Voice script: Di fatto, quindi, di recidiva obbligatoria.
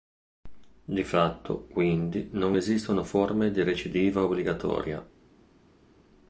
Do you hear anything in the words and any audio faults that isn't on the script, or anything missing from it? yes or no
yes